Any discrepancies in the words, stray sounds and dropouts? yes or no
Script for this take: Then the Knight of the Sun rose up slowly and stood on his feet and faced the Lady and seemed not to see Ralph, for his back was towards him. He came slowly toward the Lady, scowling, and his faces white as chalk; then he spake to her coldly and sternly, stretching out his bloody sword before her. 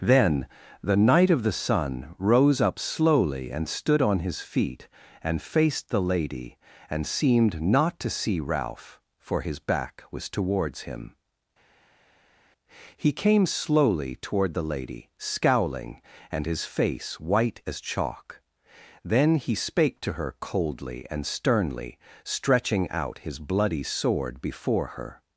yes